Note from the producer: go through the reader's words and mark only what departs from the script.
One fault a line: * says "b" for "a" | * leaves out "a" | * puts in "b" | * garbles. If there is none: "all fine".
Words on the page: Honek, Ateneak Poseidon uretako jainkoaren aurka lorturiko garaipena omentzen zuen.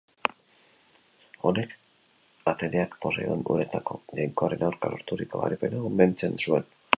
all fine